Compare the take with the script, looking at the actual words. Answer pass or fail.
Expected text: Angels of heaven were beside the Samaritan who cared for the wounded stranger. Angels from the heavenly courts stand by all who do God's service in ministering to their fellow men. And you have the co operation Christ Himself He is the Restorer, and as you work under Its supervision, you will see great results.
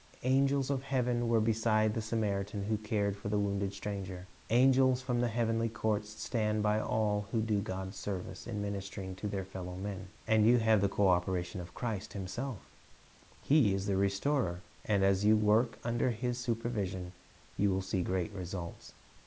fail